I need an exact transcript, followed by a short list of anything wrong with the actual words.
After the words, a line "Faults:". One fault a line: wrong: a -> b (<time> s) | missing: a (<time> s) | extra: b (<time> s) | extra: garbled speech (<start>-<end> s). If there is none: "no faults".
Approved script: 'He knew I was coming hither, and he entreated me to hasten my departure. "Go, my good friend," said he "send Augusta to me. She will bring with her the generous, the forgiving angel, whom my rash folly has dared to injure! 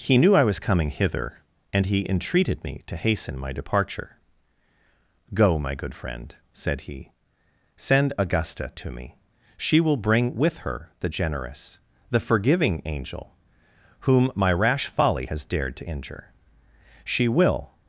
'He knew I was coming hither, and he entreated me to hasten my departure. "Go, my good friend," said he "send Augusta to me. She will bring with her the generous, the forgiving angel, whom my rash folly has dared to injure! She will
Faults:
extra: She will (17.0 s)